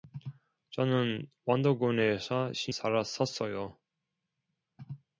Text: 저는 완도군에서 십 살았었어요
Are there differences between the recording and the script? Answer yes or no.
no